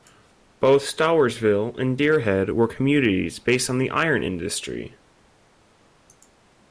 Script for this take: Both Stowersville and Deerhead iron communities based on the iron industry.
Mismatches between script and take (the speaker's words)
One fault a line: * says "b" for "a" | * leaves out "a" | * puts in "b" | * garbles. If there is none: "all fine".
* says "were" for "iron"